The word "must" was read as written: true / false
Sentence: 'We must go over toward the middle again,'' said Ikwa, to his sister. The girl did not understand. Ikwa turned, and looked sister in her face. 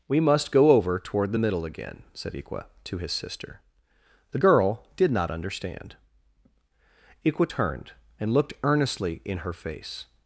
true